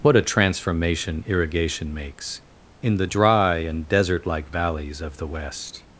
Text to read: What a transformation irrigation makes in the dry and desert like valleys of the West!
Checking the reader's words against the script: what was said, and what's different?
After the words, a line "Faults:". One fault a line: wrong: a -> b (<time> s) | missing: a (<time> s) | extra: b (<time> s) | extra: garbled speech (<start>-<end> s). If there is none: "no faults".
What a transformation irrigation makes in the dry and desert like valleys of the West!
Faults:
no faults